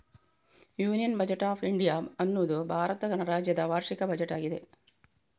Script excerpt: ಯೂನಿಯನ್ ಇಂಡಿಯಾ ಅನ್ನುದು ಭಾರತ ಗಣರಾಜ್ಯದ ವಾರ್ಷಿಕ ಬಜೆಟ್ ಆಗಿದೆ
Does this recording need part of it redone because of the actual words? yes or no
yes